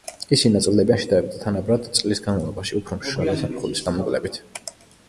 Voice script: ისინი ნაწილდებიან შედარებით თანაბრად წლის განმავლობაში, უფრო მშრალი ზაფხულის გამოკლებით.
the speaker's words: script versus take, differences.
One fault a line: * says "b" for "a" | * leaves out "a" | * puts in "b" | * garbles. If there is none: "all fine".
all fine